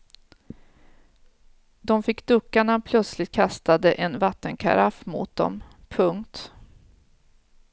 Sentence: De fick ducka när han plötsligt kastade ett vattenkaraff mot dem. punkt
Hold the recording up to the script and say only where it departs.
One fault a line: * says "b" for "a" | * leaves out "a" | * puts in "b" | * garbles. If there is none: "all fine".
* says "en" for "ett"